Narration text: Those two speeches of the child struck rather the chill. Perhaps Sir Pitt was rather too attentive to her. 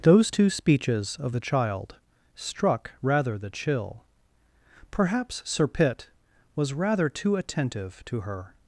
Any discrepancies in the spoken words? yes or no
no